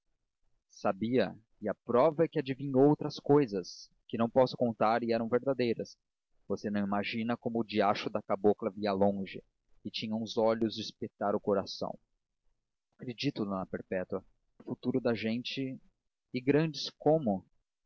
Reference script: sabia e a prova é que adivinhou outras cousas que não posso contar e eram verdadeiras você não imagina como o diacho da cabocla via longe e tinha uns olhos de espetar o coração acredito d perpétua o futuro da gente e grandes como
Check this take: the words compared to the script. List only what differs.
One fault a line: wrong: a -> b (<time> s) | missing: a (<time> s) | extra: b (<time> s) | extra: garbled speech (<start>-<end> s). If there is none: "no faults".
no faults